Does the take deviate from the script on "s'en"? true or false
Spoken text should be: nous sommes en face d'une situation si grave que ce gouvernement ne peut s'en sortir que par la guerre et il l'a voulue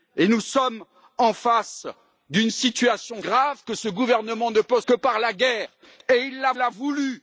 true